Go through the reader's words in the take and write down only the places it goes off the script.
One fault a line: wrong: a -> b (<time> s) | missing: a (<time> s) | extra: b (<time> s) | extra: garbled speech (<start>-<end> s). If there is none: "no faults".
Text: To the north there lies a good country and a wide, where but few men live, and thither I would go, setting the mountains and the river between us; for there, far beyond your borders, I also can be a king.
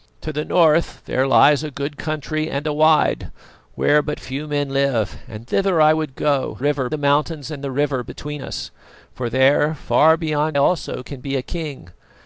wrong: setting -> river (6.6 s)
missing: your borders I (10.6 s)